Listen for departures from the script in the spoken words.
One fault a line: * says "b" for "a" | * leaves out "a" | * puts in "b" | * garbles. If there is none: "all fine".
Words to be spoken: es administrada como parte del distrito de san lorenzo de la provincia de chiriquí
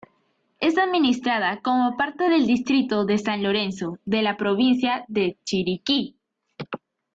all fine